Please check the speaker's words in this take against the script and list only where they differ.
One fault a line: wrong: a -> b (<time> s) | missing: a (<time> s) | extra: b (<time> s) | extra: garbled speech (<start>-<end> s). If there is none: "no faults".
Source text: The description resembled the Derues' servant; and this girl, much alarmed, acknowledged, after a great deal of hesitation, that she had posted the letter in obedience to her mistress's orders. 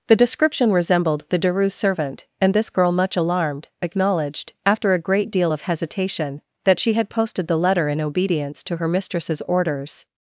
no faults